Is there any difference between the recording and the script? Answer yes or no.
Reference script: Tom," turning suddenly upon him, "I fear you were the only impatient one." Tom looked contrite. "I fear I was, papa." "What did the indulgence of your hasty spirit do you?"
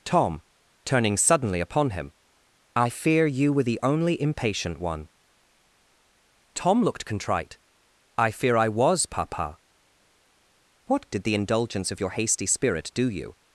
no